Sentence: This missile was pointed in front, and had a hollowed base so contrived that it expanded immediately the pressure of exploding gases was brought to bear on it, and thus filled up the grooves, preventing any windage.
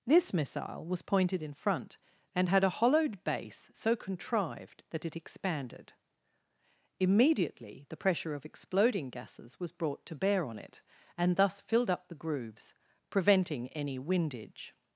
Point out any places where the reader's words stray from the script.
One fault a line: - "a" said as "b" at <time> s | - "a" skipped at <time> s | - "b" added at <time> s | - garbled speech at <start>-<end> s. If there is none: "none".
none